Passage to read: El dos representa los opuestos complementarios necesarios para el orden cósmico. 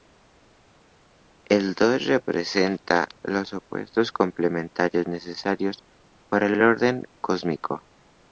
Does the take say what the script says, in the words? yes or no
no